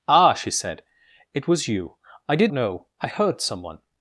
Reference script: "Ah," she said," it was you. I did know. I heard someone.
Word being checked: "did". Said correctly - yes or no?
yes